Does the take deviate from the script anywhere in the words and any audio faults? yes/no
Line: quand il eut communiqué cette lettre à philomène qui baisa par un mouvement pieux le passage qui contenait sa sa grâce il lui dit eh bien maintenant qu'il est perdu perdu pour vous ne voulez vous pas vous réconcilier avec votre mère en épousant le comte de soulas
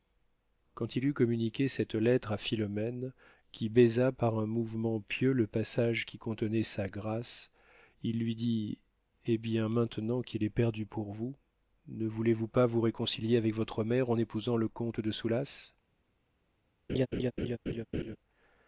yes